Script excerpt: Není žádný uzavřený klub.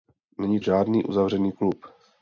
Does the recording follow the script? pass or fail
pass